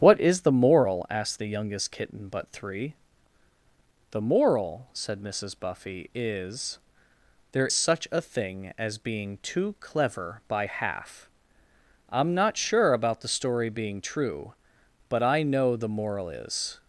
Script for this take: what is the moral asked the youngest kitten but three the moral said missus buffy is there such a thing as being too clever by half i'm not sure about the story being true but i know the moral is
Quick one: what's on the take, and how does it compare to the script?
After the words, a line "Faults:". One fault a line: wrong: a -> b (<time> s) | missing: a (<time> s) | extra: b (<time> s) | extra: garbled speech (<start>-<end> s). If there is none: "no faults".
what is the moral asked the youngest kitten but three the moral said missus buffy is there such a thing as being too clever by half i'm not sure about the story being true but i know the moral is
Faults:
no faults